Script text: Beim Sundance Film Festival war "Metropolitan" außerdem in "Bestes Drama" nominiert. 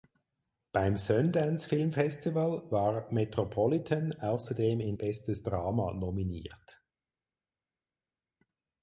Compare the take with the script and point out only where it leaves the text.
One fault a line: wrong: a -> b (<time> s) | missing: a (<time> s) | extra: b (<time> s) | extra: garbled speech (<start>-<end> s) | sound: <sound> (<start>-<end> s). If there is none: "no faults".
no faults